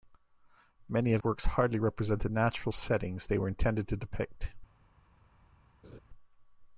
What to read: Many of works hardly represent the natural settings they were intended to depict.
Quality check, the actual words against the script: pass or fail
pass